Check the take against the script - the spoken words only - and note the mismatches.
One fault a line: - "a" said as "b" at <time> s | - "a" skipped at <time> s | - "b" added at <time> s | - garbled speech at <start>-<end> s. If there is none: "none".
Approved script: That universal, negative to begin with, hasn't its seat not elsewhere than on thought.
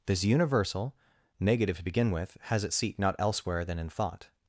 - "That" said as "This" at 0.1 s
- "hasn't" said as "has" at 2.4 s
- "on" said as "in" at 3.8 s